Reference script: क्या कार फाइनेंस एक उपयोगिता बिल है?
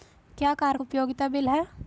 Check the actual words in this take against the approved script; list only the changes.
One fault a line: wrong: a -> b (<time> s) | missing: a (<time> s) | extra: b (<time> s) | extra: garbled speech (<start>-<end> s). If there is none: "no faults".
missing: फाइनेंस एक (0.8 s)